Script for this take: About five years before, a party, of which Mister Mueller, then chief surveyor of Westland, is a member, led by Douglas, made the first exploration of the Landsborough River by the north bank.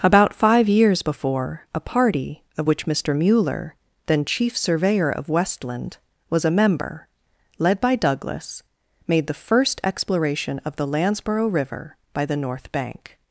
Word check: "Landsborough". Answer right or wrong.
right